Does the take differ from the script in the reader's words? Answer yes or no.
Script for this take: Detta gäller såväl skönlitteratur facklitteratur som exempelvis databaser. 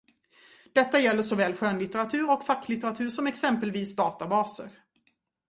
yes